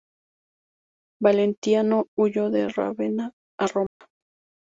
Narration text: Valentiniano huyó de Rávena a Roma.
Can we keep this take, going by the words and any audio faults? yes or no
no